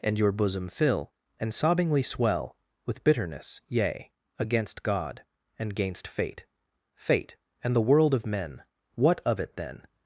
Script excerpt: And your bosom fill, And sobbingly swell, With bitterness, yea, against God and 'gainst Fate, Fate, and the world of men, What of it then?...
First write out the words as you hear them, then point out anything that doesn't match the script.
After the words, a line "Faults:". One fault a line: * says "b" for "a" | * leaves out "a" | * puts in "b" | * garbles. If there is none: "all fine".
And your bosom fill, And sobbingly swell, With bitterness, yea, against God and 'gainst Fate, Fate, and the world of men, What of it then?...
Faults:
all fine